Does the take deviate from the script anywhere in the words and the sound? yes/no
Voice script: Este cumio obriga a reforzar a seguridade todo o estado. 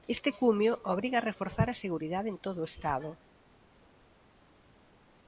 yes